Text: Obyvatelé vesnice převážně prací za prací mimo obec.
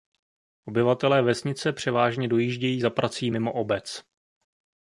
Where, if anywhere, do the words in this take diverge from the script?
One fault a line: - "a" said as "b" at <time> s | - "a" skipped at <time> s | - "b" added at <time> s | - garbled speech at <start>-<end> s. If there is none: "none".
- "prací" said as "dojíždějí" at 2.3 s